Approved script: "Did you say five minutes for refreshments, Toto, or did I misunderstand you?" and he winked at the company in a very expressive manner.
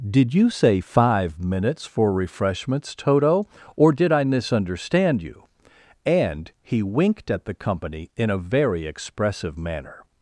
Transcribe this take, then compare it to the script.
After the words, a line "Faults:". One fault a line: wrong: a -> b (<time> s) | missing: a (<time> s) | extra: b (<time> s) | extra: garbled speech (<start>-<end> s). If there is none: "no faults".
"Did you say five minutes for refreshments, Toto, or did I misunderstand you?" and he winked at the company in a very expressive manner.
Faults:
no faults